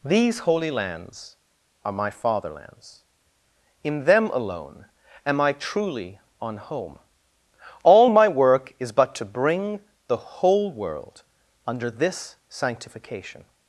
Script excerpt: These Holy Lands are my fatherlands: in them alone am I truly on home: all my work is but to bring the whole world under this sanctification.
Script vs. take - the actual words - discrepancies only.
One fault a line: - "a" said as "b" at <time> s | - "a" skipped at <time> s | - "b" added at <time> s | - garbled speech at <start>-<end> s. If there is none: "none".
none